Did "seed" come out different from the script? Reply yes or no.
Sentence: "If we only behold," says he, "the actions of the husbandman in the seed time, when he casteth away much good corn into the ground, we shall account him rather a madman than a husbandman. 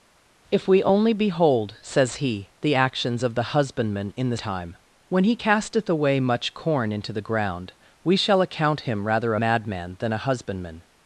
yes